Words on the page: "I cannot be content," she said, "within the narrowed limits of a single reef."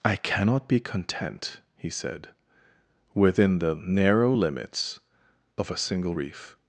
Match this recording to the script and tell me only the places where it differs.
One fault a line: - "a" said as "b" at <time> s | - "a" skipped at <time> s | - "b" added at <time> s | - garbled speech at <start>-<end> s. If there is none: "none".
- "she" said as "he" at 1.8 s
- "narrowed" said as "narrow" at 3.8 s